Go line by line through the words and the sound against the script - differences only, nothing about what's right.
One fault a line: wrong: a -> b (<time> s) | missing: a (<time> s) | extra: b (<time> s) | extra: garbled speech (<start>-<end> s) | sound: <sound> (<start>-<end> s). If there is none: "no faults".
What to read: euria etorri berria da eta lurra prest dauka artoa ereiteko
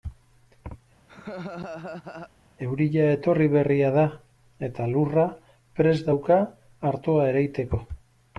sound: laugh (1.1-2.3 s)